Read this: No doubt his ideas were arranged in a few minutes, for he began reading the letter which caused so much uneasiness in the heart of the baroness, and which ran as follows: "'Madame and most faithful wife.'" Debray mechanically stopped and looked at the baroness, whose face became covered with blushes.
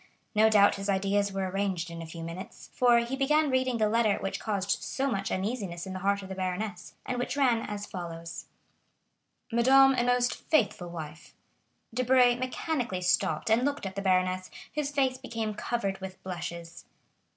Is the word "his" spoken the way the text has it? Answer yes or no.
yes